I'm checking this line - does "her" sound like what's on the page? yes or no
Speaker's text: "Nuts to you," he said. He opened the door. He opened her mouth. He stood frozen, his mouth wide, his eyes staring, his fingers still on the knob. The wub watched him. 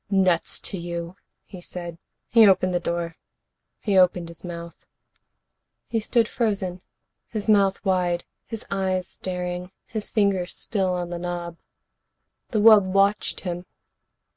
no